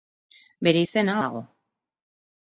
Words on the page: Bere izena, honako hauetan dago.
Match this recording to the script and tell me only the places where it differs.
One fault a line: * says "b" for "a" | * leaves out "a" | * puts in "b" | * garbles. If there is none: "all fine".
* leaves out "honako hauetan"